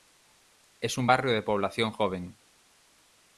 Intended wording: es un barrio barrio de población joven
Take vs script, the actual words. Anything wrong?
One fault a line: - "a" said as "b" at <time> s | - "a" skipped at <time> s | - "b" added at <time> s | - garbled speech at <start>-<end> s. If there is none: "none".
- "barrio" skipped at 1.3 s